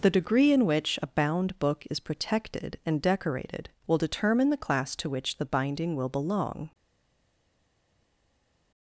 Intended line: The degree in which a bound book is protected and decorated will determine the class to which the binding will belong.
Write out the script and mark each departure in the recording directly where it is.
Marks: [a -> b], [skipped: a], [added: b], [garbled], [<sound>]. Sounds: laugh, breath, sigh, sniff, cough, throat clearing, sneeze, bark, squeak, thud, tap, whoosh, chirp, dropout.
The degree in which a bound book is protected and decorated will determine the class to which the binding will belong.